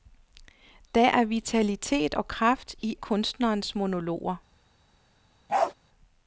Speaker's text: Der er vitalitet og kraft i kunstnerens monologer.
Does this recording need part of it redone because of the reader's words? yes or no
no